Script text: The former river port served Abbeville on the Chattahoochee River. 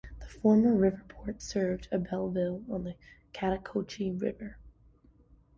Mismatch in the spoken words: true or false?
false